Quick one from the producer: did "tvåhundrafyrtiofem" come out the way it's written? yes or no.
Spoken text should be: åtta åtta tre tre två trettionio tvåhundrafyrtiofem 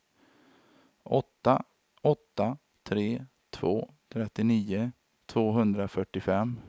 yes